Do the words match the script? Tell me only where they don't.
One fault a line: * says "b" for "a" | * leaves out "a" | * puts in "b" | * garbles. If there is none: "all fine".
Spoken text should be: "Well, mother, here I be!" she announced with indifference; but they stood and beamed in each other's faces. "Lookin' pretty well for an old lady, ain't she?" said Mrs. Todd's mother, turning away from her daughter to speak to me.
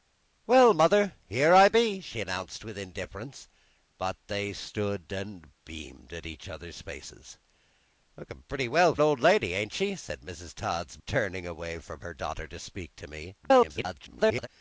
* leaves out "for"
* leaves out "mother"
* garbles